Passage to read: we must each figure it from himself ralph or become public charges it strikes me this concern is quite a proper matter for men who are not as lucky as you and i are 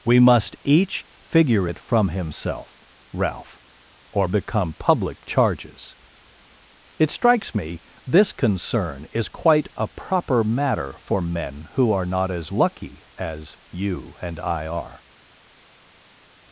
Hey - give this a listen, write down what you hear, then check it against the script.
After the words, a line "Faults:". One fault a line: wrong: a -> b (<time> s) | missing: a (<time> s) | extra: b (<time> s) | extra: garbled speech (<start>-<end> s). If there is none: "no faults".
we must each figure it from himself ralph or become public charges it strikes me this concern is quite a proper matter for men who are not as lucky as you and i are
Faults:
no faults